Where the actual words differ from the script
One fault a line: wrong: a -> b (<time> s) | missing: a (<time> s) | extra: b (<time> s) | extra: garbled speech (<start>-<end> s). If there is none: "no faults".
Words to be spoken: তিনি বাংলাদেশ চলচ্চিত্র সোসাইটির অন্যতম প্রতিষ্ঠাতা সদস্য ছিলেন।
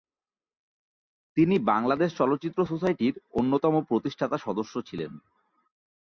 no faults